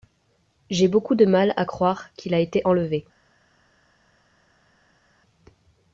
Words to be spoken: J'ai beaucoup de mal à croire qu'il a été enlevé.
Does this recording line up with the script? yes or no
yes